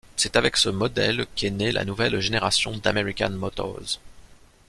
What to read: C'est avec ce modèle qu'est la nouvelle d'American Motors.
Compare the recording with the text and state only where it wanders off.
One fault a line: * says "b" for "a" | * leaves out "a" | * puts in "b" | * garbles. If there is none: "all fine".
* puts in "née"
* puts in "génération"